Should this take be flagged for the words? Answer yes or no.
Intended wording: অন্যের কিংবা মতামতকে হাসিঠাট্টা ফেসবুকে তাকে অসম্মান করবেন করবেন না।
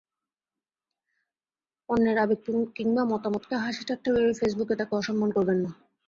yes